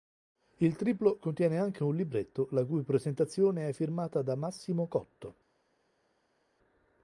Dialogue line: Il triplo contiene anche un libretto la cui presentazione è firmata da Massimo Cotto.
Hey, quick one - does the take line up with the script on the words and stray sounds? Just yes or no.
yes